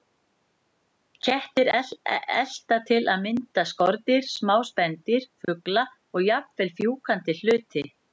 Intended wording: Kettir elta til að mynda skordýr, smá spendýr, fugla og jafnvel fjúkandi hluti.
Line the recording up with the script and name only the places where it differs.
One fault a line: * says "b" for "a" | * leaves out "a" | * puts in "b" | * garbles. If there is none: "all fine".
all fine